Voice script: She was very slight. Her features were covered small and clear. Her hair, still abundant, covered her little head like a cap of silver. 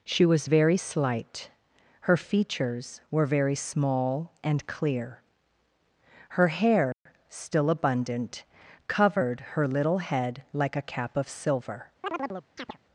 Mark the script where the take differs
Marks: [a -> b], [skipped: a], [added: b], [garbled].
She was very slight. Her features were [covered -> very] small and clear. Her hair, still abundant, covered her little head like a cap of silver.